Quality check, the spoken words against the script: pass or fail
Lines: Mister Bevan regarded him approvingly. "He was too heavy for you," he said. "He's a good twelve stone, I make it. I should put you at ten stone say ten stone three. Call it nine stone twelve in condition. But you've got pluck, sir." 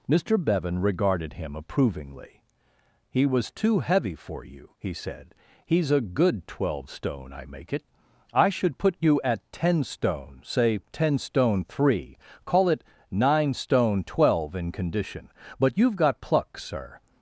pass